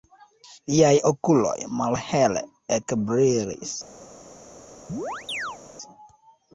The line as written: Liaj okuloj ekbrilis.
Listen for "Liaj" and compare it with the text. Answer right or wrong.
right